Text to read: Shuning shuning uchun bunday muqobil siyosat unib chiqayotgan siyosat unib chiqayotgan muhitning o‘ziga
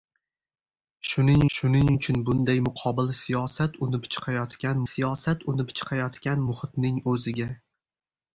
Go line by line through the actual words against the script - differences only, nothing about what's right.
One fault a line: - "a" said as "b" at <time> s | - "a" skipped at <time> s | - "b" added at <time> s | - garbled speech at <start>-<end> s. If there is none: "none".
none